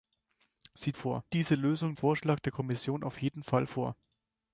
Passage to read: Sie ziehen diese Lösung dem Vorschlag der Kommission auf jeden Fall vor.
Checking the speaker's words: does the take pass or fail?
fail